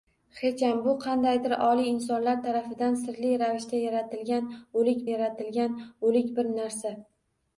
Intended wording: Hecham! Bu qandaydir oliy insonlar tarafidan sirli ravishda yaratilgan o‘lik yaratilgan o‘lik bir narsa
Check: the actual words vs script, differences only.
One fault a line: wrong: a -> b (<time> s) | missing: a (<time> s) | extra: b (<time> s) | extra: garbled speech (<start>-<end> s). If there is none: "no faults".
no faults